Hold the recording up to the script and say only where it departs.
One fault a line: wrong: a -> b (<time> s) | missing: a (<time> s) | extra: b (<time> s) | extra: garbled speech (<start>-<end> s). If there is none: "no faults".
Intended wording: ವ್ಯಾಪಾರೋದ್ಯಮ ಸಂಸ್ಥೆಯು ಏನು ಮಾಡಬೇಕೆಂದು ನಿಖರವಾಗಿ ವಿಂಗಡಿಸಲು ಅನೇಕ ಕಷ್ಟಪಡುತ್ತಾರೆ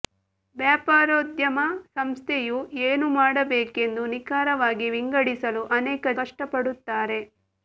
no faults